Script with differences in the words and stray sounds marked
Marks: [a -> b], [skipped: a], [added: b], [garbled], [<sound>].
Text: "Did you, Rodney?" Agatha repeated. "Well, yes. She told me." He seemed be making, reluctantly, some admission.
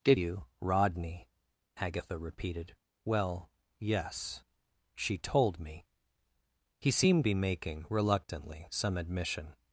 "Did you, Rodney?" Agatha repeated. "Well, yes. She told me." He seemed be making, reluctantly, some admission.